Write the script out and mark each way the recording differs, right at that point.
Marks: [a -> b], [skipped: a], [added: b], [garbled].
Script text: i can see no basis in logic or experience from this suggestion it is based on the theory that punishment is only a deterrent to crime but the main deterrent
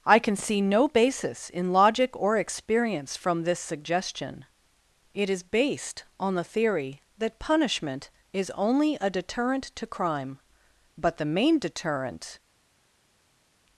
i can see no basis in logic or experience from this suggestion it is based on the theory that punishment is only a deterrent to crime but the main deterrent